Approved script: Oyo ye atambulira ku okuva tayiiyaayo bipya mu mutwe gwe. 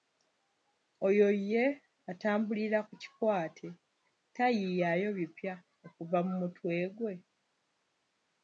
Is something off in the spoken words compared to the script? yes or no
yes